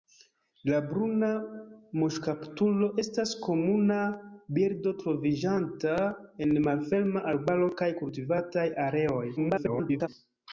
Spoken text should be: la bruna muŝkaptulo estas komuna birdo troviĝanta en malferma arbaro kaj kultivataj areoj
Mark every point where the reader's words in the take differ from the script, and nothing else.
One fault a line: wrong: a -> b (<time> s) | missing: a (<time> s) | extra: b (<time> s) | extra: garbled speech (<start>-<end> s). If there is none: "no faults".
extra: garbled speech (9.4-10.1 s)